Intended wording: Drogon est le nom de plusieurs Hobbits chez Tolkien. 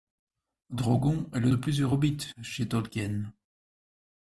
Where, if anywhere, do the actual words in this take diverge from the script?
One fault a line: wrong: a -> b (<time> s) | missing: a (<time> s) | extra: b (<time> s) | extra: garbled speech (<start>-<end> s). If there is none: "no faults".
missing: nom (1.5 s)